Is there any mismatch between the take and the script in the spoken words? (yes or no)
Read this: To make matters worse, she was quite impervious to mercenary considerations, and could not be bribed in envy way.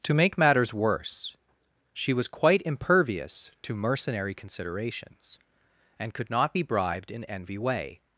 no